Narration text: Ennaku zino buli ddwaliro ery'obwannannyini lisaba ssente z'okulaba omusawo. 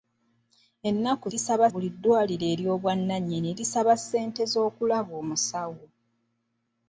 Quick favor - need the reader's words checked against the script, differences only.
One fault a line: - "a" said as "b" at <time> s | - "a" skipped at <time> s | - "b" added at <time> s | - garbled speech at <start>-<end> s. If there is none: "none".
- "zino" said as "lisaba" at 1.3 s